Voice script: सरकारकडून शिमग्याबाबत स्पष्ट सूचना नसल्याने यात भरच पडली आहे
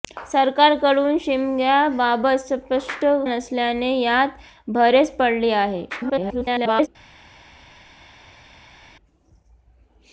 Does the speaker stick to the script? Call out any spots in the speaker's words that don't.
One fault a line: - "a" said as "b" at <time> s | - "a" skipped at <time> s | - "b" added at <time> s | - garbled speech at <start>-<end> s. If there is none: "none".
- "सूचना" skipped at 3.0 s
- garbled speech at 5.9-6.9 s